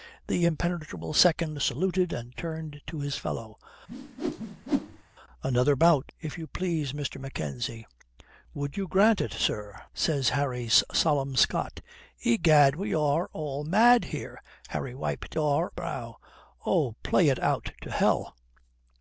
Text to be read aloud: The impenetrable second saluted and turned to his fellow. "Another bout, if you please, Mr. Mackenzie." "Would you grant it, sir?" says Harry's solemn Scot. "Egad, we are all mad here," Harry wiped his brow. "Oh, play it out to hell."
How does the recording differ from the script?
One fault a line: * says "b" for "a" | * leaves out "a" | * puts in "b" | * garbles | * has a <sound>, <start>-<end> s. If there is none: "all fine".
* has a whoosh, 3.9-5.0 s
* says "are" for "his"